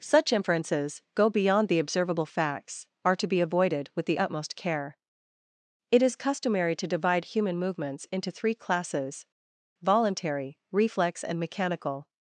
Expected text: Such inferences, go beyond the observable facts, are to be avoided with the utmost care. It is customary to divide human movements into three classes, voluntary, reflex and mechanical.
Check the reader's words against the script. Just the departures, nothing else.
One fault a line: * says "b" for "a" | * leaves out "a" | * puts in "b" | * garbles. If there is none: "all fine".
all fine